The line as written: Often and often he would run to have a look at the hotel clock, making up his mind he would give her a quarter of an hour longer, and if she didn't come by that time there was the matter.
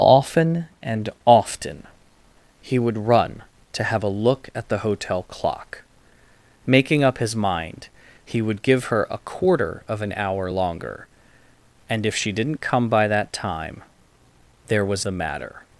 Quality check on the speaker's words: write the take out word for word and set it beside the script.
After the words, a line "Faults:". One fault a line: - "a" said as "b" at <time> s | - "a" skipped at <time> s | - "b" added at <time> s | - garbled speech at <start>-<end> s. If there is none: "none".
Often and often he would run to have a look at the hotel clock, making up his mind he would give her a quarter of an hour longer, and if she didn't come by that time there was the matter.
Faults:
none